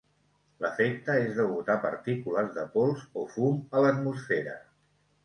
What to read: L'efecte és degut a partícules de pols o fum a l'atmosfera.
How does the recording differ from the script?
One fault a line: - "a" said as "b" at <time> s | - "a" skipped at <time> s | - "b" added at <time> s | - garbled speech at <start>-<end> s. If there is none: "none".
none